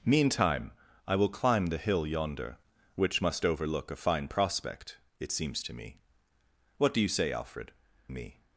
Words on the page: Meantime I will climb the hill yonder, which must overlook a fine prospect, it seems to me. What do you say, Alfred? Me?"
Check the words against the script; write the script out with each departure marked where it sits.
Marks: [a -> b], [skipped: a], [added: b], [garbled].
Meantime I will climb the hill yonder, which must overlook a fine prospect, it seems to me. What do you say, Alfred? Me?"